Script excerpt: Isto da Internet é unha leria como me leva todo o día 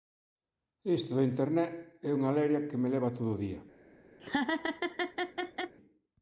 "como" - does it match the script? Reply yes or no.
no